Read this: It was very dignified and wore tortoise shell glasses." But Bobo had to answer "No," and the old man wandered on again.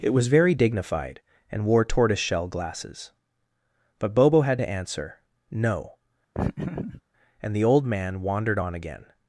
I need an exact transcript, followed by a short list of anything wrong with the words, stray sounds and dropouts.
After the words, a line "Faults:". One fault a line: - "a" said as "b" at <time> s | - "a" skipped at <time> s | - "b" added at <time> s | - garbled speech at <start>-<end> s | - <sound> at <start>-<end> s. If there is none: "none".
It was very dignified and wore tortoise shell glasses." But Bobo had to answer "No," and the old man wandered on again.
Faults:
- laugh at 6.3-7.0 s